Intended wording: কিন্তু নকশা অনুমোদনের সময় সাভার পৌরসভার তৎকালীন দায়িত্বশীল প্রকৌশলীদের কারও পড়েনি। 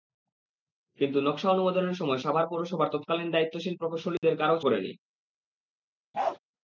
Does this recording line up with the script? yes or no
yes